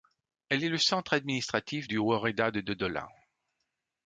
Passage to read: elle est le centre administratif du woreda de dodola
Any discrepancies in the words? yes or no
no